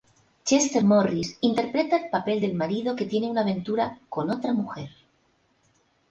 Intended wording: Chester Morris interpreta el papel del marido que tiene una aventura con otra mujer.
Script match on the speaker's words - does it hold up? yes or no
yes